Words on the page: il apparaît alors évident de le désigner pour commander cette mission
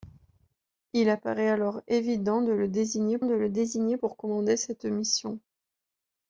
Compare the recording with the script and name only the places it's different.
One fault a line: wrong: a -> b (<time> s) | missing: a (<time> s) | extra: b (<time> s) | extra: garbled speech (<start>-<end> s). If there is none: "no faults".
extra: de le désigner (3.2 s)